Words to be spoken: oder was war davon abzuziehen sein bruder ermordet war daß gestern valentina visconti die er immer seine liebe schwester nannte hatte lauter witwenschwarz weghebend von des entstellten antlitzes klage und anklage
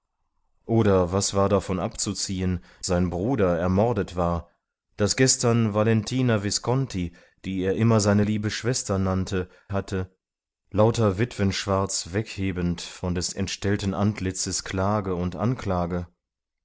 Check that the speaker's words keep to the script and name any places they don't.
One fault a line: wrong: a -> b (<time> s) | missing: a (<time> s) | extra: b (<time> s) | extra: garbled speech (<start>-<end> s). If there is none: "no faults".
no faults